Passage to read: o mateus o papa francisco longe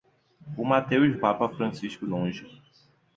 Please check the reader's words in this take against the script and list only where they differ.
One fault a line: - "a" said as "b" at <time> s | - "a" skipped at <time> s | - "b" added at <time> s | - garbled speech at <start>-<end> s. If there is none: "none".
none